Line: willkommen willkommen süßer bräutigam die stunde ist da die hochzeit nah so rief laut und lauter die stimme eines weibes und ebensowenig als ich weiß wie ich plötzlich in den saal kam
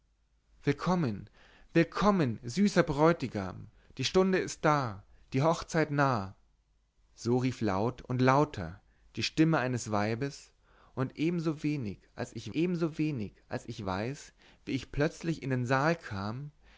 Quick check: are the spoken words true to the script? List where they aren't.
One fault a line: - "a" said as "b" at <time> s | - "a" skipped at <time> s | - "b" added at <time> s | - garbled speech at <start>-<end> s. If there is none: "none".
- "ebensowenig als ich" added at 12.5 s